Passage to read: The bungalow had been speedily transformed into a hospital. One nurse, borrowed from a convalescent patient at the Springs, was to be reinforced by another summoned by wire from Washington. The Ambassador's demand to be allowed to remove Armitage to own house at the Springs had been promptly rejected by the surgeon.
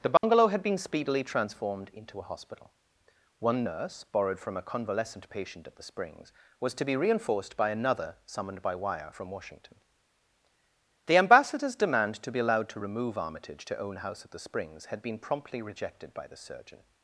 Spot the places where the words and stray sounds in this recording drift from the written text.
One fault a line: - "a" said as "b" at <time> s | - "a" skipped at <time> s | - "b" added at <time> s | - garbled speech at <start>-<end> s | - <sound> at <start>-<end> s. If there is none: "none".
- dropout at 0.2-0.2 s